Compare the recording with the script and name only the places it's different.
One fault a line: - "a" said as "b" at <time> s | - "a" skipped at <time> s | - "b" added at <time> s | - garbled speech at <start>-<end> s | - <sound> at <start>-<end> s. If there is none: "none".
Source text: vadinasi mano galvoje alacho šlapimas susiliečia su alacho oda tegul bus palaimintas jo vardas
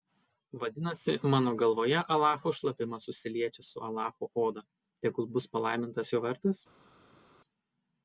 none